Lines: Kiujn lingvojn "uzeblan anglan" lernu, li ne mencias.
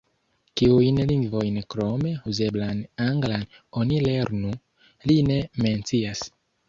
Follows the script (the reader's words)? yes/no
no